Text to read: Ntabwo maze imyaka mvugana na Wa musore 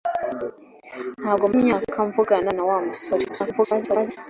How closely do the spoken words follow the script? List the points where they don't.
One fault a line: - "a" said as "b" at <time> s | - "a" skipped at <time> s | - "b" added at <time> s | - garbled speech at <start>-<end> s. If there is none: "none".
- "maze" skipped at 1.4 s
- garbled speech at 3.3-4.2 s